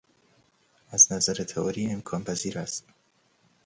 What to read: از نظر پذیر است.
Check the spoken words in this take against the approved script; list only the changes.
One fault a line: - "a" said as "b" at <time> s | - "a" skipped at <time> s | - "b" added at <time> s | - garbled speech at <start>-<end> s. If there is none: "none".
- "تئوری امکان" added at 1.3 s